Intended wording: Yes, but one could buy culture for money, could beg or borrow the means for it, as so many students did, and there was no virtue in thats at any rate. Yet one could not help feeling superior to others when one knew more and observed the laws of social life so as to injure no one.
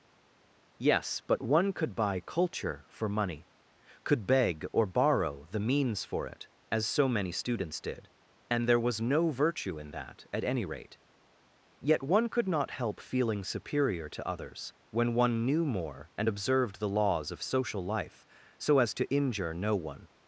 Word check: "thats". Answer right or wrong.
wrong